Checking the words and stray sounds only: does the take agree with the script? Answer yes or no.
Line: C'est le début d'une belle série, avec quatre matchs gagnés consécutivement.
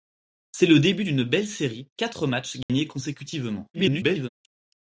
no